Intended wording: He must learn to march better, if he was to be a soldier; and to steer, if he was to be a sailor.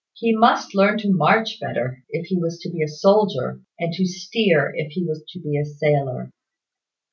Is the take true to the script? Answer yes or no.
yes